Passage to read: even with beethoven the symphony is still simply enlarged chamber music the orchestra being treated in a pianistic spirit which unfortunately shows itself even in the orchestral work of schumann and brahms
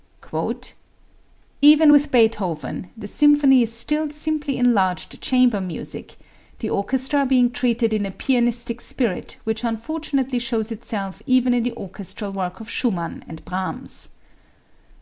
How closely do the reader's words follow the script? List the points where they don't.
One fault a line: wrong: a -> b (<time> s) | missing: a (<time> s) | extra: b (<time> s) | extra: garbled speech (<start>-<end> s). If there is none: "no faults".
no faults